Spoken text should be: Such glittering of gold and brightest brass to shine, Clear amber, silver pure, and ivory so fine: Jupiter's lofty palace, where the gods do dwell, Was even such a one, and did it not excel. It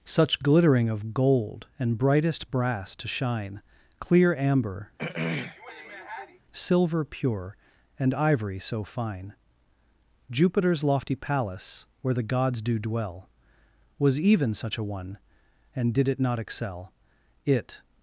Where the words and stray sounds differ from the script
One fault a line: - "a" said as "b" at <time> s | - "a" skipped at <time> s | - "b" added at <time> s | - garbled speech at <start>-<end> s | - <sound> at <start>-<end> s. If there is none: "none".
- throat clearing at 5.0-6.4 s